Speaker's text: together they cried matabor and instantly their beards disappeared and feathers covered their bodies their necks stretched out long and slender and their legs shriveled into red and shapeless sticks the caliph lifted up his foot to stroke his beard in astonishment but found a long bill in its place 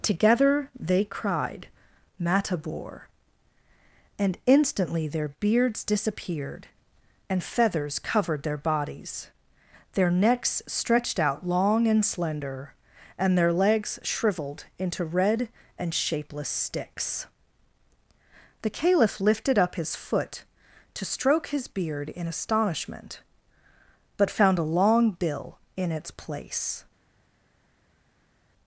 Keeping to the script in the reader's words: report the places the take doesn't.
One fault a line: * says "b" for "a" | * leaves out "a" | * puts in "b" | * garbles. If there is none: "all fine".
all fine